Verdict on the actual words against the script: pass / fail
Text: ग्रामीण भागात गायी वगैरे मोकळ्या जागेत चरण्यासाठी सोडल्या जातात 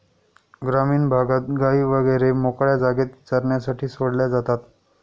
pass